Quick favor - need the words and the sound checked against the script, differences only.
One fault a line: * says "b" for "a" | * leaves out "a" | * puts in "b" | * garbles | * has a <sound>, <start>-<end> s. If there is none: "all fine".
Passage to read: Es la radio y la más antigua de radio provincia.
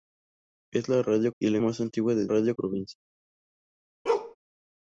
* has a bark, 4.1-4.4 s